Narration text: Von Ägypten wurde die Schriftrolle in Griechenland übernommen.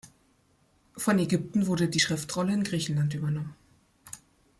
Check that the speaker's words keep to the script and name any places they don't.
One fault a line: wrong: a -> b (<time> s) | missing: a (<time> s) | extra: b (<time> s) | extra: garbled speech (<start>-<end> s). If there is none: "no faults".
no faults